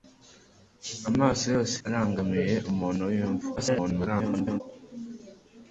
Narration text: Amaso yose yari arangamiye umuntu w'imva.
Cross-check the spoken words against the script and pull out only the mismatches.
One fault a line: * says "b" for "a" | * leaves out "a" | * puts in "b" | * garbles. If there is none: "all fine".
* leaves out "yari"
* garbles